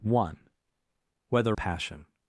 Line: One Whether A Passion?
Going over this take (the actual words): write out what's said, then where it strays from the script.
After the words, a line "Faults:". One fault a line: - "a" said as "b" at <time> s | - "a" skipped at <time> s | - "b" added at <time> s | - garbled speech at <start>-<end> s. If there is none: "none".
One Whether A Passion?
Faults:
none